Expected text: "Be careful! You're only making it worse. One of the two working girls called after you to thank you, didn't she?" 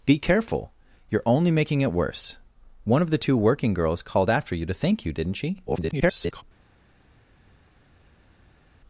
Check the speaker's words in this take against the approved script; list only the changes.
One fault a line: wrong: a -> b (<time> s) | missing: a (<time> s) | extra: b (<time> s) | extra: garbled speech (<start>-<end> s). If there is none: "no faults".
extra: garbled speech (5.7-6.4 s)